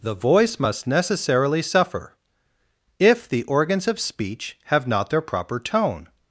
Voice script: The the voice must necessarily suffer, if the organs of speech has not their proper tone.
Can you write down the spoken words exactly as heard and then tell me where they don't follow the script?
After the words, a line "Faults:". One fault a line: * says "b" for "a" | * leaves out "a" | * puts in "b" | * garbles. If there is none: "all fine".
The voice must necessarily suffer, if the organs of speech have not their proper tone.
Faults:
* leaves out "the"
* says "have" for "has"